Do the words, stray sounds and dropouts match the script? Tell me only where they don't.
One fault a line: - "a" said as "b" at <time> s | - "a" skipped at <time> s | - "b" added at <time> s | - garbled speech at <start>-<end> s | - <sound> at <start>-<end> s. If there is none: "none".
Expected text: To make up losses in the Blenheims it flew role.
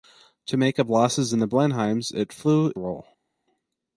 none